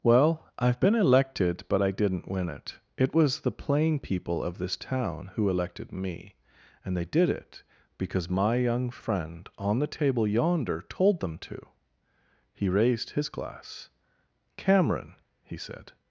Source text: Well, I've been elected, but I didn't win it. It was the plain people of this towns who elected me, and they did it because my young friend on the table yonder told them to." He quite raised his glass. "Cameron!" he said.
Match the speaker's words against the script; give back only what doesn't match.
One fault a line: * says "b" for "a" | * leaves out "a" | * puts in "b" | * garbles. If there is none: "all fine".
* says "town" for "towns"
* leaves out "quite"